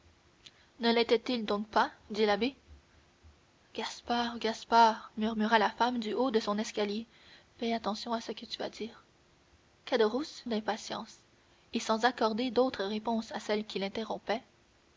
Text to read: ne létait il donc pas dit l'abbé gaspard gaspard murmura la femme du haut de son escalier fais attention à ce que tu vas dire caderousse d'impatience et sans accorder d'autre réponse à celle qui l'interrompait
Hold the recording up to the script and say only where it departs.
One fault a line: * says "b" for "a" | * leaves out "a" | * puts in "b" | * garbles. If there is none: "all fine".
all fine